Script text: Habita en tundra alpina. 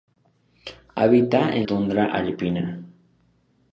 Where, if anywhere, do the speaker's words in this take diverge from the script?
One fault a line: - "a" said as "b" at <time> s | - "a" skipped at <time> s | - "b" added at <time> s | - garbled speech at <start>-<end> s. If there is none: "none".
none